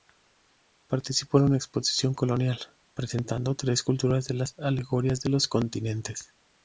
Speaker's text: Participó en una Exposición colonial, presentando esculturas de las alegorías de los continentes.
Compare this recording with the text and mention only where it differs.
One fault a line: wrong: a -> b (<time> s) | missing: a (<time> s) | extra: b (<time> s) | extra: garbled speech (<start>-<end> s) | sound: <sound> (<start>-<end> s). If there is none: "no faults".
extra: tres (3.5 s)